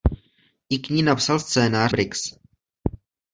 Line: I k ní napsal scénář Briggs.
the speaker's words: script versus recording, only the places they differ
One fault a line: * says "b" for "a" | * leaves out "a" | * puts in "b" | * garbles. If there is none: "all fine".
all fine